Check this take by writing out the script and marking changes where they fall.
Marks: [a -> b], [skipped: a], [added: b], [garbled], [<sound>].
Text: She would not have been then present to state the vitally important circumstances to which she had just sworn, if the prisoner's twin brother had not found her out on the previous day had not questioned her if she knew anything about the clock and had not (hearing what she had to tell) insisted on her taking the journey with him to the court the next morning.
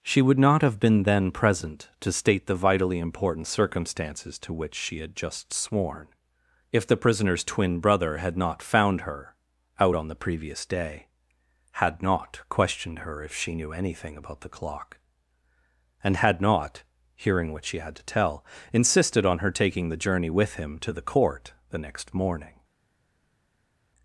She would not have been then present to state the vitally important circumstances to which she had just sworn, if the prisoner's twin brother had not found her out on the previous day had not questioned her if she knew anything about the clock and had not (hearing what she had to tell) insisted on her taking the journey with him to the court the next morning.